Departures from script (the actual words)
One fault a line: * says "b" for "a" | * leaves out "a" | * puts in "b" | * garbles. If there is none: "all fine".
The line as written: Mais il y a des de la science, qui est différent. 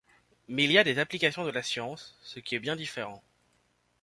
* puts in "applications"
* puts in "ce"
* puts in "bien"